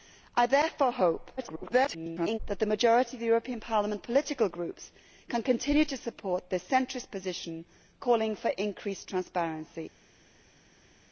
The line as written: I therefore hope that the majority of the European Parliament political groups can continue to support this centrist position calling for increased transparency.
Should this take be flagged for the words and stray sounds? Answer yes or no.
yes